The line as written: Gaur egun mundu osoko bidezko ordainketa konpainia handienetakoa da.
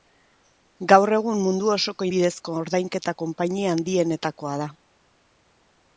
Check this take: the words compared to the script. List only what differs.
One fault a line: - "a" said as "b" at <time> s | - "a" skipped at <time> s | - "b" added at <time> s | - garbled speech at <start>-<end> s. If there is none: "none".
none